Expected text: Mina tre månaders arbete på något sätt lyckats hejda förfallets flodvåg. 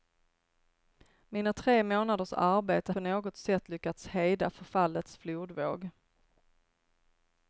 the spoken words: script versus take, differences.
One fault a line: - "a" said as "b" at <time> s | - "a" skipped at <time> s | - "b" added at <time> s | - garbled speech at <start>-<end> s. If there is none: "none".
none